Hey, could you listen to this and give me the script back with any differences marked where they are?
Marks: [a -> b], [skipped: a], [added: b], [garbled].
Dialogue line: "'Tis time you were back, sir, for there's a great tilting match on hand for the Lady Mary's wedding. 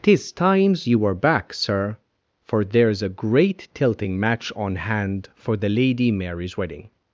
"'Tis [time -> times] you were back, sir, for there's a great tilting match on hand for the Lady Mary's wedding.